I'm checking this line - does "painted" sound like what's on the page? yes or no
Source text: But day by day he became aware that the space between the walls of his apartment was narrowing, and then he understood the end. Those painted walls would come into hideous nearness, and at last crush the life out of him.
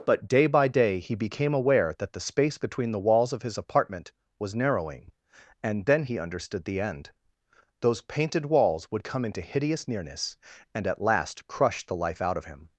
yes